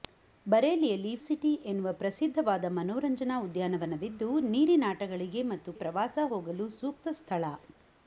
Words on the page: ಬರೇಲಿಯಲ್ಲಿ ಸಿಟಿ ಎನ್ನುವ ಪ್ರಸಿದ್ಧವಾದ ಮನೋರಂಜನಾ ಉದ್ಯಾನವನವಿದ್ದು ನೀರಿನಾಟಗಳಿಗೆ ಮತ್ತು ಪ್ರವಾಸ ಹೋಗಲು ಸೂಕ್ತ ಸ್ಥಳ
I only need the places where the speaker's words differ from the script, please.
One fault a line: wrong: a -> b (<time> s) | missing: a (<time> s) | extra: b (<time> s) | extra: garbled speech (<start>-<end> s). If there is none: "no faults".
no faults